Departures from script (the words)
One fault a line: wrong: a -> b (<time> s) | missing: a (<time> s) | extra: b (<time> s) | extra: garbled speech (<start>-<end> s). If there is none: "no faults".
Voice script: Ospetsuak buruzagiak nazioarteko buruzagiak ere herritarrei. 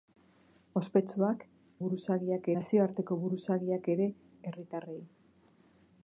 no faults